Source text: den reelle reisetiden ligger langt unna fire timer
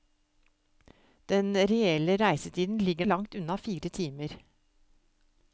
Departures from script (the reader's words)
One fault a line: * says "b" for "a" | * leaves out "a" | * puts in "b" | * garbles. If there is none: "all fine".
all fine